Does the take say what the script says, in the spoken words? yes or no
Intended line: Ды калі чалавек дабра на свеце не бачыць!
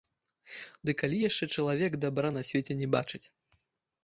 no